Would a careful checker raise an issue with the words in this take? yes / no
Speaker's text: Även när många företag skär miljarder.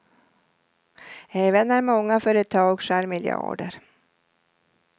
no